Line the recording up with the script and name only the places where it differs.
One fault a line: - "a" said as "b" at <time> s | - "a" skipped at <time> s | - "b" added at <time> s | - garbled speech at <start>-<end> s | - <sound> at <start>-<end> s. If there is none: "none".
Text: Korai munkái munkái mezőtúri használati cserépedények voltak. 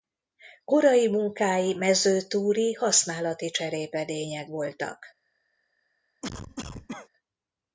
- "munkái" skipped at 1.7 s
- cough at 6.2-7.1 s